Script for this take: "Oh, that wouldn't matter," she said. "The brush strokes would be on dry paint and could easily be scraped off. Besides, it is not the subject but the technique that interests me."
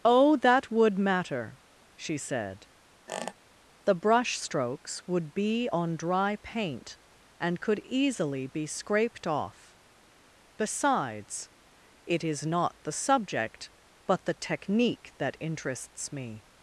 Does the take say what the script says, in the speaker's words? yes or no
no